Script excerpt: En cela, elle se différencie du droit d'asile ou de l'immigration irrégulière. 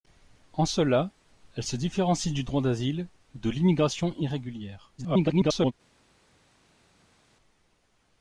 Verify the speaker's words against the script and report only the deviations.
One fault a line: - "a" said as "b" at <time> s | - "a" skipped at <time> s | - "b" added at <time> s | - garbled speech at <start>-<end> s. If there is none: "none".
- garbled speech at 5.0-5.7 s